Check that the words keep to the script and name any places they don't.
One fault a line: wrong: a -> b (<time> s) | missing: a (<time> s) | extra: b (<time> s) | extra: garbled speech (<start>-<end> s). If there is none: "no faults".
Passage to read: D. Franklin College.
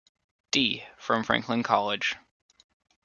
extra: from (1.0 s)